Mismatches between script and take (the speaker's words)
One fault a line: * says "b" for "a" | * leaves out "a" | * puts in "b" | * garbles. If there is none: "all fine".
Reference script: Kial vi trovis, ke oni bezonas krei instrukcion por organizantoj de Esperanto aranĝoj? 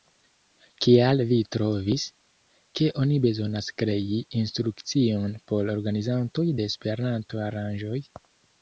all fine